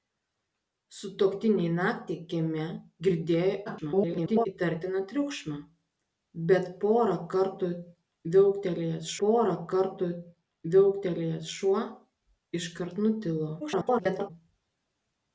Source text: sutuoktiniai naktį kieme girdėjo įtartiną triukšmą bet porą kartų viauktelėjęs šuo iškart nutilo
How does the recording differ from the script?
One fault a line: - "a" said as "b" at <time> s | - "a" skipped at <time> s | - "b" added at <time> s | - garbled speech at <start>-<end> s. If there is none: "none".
- garbled speech at 3.7-4.5 s
- "porą kartų viauktelėjęs" added at 9.2 s
- garbled speech at 13.6-14.3 s